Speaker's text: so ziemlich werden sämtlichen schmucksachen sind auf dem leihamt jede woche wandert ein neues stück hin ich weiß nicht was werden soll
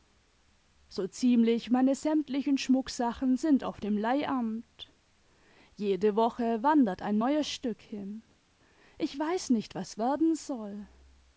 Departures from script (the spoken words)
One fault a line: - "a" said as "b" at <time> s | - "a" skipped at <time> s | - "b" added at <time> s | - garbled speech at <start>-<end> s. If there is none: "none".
- "werden" said as "meine" at 1.7 s